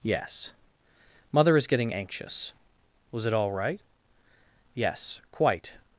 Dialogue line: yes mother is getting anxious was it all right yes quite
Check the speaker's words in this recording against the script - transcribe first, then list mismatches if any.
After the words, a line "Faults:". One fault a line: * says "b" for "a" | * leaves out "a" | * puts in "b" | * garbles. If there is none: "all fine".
yes mother is getting anxious was it all right yes quite
Faults:
all fine